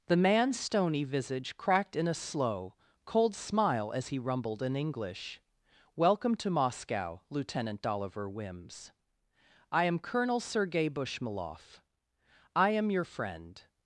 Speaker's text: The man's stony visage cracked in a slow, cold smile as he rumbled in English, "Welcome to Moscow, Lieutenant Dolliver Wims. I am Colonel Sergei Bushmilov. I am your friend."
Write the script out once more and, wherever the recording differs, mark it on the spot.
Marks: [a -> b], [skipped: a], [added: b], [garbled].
The man's stony visage cracked in a slow, cold smile as he rumbled in English, "Welcome to Moscow, Lieutenant Dolliver Wims. I am Colonel Sergei Bushmilov. I am your friend."